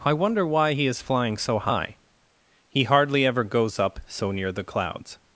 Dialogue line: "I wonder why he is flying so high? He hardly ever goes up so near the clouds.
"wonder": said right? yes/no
yes